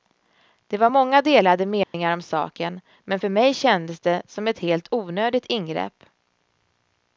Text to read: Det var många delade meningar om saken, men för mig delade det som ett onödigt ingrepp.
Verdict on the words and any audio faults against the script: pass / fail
fail